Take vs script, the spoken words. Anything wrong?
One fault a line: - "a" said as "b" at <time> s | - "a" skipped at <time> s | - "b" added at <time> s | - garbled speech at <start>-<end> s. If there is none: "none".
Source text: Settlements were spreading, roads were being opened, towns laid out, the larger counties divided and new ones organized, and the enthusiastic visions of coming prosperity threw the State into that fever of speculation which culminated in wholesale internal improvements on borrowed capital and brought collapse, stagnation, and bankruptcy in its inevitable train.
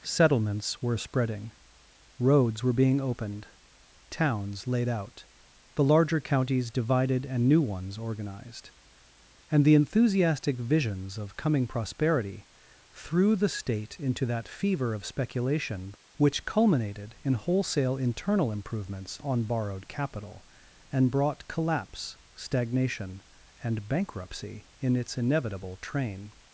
none